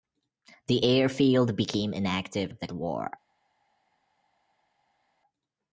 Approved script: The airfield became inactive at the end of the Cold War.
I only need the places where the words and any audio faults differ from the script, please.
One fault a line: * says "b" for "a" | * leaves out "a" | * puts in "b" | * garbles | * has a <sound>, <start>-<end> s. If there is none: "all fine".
* leaves out "at the end"
* leaves out "Cold"